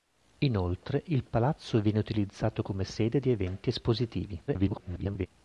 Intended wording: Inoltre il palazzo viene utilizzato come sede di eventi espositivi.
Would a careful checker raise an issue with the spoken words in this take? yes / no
yes